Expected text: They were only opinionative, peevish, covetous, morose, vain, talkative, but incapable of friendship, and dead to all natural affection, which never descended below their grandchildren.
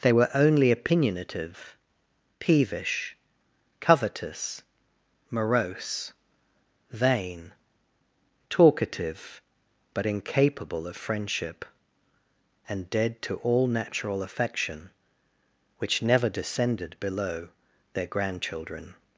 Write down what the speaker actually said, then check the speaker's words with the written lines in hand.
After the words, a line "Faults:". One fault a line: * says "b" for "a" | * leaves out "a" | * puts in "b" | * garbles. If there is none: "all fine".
They were only opinionative, peevish, covetous, morose, vain, talkative, but incapable of friendship, and dead to all natural affection, which never descended below their grandchildren.
Faults:
all fine